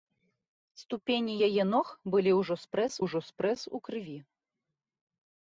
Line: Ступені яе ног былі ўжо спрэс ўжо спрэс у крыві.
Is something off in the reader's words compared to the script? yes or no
no